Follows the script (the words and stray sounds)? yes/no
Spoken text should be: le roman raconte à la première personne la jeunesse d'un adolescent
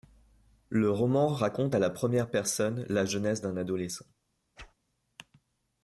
no